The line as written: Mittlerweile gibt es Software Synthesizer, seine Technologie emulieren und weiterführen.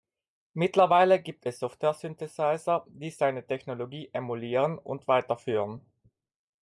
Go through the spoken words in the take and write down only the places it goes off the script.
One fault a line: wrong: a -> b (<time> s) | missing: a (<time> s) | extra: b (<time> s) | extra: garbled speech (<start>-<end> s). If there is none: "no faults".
extra: die (2.9 s)